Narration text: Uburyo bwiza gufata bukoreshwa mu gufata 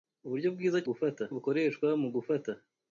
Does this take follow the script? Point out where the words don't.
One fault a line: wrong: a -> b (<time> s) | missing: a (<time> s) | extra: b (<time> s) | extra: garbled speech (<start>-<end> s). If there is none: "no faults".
no faults